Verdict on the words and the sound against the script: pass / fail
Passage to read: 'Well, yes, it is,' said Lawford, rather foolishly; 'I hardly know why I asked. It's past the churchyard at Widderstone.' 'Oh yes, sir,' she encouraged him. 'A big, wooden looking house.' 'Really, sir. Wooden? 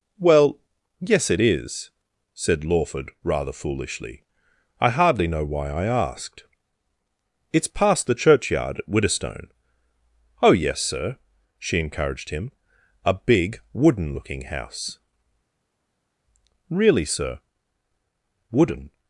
pass